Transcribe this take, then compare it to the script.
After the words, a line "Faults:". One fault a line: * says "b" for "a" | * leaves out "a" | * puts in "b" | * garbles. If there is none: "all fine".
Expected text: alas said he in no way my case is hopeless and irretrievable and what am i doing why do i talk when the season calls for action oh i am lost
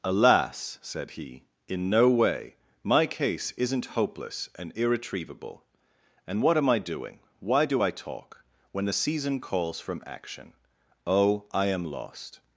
alas said he in no way my case isn't hopeless and irretrievable and what am i doing why do i talk when the season calls from action oh i am lost
Faults:
* says "isn't" for "is"
* says "from" for "for"